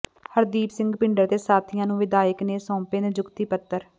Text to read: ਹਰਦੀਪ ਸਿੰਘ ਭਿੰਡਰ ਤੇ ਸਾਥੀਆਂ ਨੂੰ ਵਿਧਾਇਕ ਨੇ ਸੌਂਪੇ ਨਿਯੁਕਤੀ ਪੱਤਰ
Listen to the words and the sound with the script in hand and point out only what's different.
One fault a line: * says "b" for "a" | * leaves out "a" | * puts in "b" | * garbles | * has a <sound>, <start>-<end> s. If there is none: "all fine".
all fine